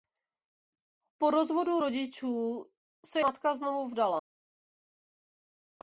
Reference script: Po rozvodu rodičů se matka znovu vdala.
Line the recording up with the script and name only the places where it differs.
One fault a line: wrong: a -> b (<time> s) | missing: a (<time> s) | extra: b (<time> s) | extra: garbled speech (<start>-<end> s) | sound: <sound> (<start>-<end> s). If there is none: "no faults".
no faults